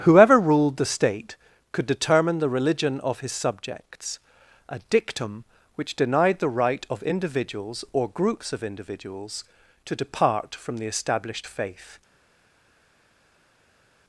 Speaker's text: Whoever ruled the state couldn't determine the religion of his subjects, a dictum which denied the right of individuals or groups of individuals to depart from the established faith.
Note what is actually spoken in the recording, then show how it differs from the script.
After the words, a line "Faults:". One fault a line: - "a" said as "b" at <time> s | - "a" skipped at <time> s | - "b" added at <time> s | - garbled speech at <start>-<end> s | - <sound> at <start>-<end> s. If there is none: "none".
Whoever ruled the state could determine the religion of his subjects, a dictum which denied the right of individuals or groups of individuals to depart from the established faith.
Faults:
- "couldn't" said as "could" at 1.7 s